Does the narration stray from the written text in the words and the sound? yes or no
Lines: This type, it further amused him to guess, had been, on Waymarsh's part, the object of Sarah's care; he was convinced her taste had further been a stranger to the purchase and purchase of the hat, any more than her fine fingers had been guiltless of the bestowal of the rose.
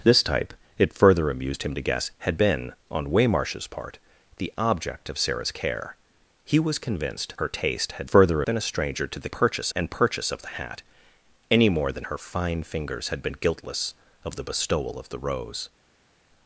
no